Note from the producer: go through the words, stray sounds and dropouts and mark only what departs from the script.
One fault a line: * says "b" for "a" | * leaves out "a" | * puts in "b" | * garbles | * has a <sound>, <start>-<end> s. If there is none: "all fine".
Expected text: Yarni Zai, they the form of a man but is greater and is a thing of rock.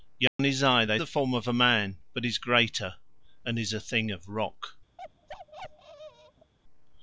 * has a dropout, 0.3-0.4 s
* has a bark, 5.0-6.5 s